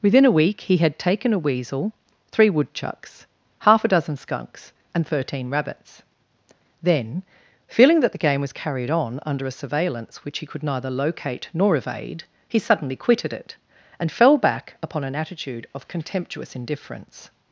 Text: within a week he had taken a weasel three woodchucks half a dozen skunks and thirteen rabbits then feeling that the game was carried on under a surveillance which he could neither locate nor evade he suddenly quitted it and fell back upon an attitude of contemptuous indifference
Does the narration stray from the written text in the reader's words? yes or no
no